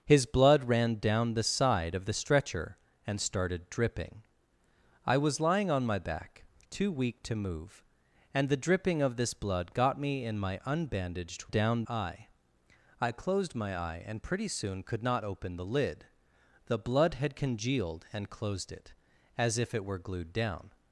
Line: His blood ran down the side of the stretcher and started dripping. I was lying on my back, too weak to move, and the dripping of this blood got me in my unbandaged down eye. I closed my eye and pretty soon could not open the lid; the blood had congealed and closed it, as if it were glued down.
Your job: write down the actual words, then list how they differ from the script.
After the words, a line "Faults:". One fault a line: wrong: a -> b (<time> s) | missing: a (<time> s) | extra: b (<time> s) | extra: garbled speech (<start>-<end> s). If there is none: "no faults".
His blood ran down the side of the stretcher and started dripping. I was lying on my back, too weak to move, and the dripping of this blood got me in my unbandaged down eye. I closed my eye and pretty soon could not open the lid; the blood had congealed and closed it, as if it were glued down.
Faults:
no faults